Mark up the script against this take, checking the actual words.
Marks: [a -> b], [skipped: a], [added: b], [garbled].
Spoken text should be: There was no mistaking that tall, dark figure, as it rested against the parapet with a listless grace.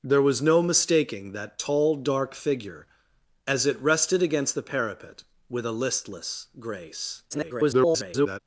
There was no mistaking that tall, dark figure, as it rested against the parapet with a listless grace. [garbled]